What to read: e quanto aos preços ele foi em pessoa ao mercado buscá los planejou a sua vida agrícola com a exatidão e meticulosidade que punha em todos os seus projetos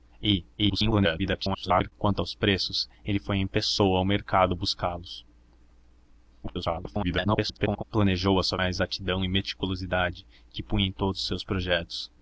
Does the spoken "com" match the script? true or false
false